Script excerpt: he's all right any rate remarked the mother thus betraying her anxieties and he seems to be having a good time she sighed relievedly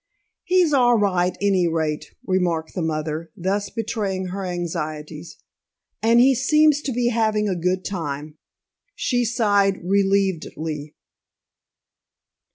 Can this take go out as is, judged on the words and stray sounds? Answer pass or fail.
pass